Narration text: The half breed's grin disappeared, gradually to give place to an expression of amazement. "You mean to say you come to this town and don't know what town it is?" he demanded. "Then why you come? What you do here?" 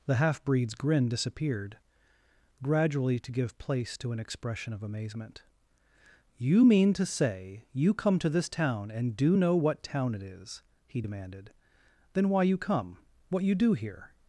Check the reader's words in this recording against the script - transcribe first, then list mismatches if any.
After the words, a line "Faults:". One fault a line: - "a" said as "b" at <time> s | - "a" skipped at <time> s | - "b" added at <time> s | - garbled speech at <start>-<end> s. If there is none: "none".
The half breed's grin disappeared, gradually to give place to an expression of amazement. "You mean to say you come to this town and do know what town it is?" he demanded. "Then why you come? What you do here?"
Faults:
- "don't" said as "do" at 9.2 s